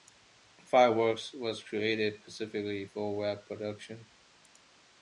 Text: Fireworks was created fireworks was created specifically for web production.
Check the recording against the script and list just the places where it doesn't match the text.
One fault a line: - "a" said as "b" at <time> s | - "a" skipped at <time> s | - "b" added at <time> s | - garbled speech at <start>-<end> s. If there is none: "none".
- "fireworks was created" skipped at 2.2 s